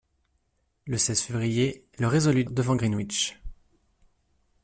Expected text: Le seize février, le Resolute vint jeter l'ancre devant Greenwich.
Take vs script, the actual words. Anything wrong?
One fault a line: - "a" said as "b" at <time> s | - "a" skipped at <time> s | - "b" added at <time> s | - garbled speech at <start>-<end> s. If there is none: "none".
- "vint jeter l'ancre" skipped at 2.5 s